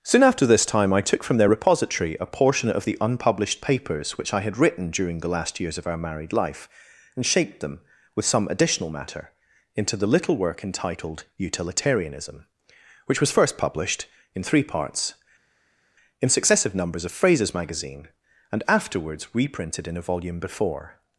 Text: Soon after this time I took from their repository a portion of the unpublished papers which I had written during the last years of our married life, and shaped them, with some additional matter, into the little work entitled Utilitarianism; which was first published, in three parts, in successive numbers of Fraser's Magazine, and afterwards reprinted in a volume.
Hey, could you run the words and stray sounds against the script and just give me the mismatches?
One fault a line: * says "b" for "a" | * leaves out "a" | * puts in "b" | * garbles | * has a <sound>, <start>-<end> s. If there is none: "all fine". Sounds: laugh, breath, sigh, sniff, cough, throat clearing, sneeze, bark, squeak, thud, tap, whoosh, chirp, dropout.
* puts in "Before"